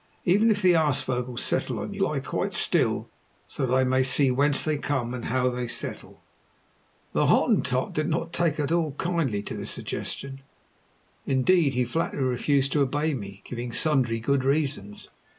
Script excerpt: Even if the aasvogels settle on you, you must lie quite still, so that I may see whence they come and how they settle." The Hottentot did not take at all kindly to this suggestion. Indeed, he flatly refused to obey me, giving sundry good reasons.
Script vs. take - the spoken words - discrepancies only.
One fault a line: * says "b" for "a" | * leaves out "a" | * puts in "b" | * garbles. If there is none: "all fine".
* leaves out "you must"